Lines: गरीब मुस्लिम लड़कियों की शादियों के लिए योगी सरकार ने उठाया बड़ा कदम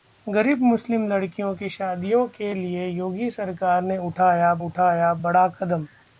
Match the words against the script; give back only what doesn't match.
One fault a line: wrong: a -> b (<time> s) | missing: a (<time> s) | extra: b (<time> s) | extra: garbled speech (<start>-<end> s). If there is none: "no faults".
extra: उठाया (4.6 s)